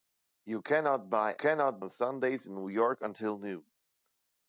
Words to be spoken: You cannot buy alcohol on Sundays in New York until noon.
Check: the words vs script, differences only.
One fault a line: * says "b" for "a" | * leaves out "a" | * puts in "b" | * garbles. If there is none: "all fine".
* says "cannot" for "alcohol"